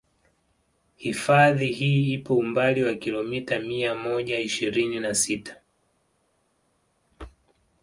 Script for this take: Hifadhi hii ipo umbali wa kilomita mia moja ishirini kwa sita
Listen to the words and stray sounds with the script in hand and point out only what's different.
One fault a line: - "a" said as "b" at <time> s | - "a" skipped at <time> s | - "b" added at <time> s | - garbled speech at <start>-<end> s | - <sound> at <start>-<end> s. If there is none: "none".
- "kwa" said as "na" at 5.0 s